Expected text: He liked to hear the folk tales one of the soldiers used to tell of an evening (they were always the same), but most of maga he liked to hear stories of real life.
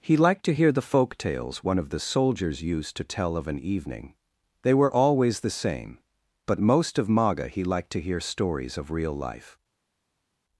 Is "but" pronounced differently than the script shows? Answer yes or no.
no